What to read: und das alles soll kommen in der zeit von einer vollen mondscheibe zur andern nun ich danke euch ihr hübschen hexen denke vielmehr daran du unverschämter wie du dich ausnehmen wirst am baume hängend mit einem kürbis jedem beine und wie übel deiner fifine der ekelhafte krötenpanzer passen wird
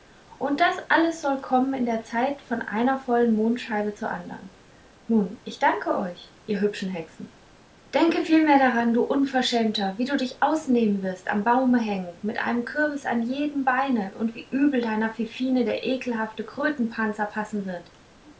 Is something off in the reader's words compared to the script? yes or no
yes